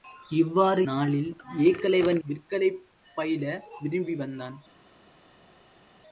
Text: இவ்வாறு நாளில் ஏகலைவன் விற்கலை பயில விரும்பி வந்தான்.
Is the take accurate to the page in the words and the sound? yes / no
yes